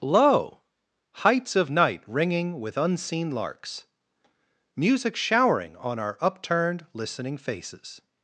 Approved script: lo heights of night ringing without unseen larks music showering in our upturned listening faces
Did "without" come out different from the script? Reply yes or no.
yes